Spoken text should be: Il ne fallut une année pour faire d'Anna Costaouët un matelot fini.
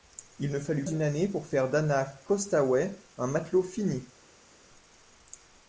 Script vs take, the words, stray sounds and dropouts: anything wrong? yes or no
no